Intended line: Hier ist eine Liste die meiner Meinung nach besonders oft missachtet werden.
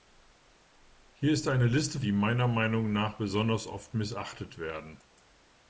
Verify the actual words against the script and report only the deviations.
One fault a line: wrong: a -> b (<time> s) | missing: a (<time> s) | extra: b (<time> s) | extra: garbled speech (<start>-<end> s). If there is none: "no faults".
no faults